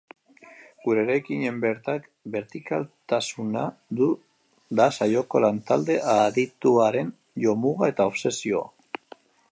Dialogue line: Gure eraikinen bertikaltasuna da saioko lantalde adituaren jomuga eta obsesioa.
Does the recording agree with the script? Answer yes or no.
yes